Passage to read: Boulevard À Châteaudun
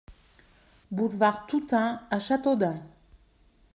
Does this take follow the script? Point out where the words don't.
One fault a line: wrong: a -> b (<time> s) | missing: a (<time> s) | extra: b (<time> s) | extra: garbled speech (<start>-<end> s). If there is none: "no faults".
extra: Toutain (1.4 s)